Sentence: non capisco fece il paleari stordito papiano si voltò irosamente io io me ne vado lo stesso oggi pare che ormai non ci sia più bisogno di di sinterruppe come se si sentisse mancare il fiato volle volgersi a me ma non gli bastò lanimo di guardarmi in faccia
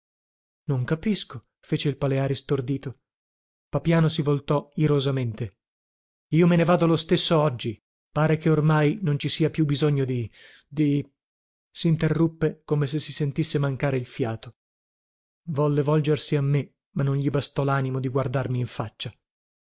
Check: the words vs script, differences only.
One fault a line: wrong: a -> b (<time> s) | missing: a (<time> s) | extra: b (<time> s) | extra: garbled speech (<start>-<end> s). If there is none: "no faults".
missing: io (6.5 s)